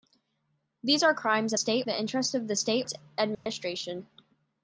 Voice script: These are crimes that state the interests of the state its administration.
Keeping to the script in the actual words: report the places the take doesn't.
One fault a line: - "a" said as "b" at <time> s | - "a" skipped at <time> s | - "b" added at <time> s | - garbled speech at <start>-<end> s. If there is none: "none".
none